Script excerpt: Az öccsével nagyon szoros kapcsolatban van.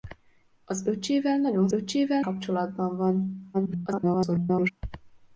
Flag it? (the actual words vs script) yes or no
yes